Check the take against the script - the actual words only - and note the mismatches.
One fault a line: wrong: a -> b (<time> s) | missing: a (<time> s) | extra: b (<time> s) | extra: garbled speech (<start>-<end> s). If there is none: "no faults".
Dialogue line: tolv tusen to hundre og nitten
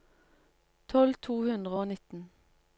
missing: tusen (1.1 s)